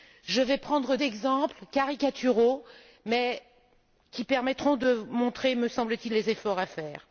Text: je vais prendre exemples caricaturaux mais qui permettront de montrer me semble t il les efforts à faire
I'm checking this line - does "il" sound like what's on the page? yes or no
yes